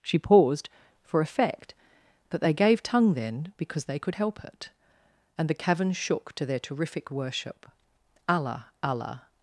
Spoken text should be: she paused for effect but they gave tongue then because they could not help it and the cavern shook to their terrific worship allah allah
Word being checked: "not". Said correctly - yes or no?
no